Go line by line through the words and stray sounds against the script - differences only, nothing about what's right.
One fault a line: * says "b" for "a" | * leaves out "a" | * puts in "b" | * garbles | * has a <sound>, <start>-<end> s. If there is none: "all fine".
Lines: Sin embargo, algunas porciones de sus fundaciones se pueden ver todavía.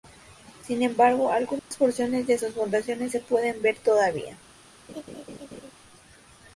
* has a dropout, 1.6-1.7 s
* has a laugh, 4.9-5.7 s